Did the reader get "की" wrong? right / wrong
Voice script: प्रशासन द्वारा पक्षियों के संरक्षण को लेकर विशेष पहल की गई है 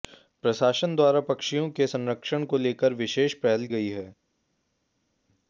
wrong